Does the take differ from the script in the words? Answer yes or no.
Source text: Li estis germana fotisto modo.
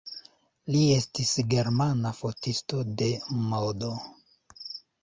yes